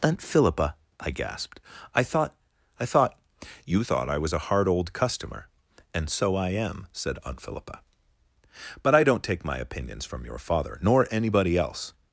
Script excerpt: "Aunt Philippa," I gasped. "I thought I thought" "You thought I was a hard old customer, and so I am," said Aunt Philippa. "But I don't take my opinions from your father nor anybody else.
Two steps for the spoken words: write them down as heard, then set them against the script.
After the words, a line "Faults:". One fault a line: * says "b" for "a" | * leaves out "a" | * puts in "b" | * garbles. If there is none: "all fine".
"Aunt Philippa," I gasped. "I thought I thought" "You thought I was a hard old customer, and so I am," said Aunt Philippa. "But I don't take my opinions from your father nor anybody else.
Faults:
all fine